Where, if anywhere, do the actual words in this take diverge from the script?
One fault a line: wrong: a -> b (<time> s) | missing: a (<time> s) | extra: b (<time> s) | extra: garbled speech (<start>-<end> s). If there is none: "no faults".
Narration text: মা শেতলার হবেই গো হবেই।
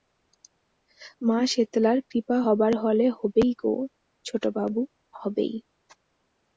extra: কৃপা হবার হলে (2.1 s)
extra: ছোটবাবু (4.2 s)